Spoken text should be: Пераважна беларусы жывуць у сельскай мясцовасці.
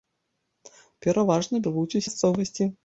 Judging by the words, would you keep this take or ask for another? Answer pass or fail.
fail